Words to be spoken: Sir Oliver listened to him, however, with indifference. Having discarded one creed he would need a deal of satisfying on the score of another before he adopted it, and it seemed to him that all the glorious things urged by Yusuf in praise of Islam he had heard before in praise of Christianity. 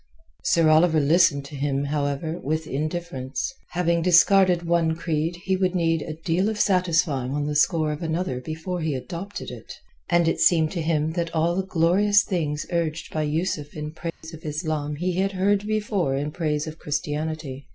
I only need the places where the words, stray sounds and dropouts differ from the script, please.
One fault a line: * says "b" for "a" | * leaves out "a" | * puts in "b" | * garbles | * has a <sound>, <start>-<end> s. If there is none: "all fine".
* has a dropout, 14.1-14.2 s